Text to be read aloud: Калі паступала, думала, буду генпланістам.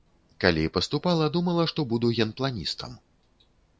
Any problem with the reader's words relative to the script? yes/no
yes